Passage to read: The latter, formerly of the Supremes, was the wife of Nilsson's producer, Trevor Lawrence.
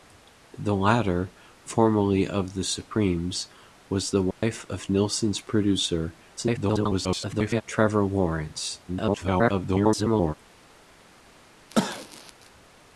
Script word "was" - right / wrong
right